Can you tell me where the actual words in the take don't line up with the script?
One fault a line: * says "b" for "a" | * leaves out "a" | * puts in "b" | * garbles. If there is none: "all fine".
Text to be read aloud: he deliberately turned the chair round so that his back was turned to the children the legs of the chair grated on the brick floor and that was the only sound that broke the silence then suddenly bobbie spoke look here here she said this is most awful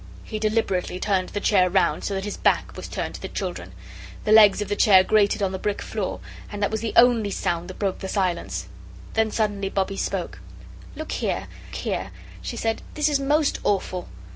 all fine